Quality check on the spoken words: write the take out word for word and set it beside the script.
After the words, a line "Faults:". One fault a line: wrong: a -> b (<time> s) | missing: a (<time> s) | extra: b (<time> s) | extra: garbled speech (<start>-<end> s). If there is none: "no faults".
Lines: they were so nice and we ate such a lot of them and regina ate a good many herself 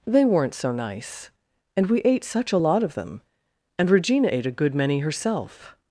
they weren't so nice and we ate such a lot of them and regina ate a good many herself
Faults:
wrong: were -> weren't (0.2 s)